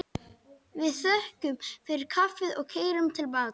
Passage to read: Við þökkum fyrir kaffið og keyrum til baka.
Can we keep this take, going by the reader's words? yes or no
yes